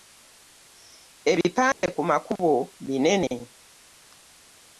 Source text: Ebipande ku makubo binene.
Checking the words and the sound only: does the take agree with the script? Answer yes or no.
no